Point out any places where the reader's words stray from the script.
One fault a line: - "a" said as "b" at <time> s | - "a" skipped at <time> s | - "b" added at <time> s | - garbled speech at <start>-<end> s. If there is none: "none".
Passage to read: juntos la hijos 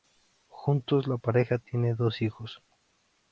- "pareja tiene dos" added at 1.1 s